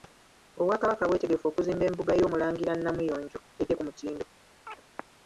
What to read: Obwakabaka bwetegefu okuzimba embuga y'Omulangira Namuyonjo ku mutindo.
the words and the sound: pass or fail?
fail